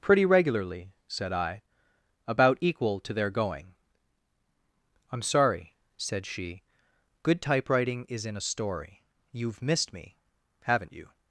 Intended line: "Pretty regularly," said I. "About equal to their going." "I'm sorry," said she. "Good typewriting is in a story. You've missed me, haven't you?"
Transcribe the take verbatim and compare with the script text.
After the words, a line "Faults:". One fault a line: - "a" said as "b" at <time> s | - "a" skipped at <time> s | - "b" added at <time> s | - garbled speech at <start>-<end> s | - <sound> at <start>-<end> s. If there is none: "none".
"Pretty regularly," said I. "About equal to their going." "I'm sorry," said she. "Good typewriting is in a story. You've missed me, haven't you?"
Faults:
none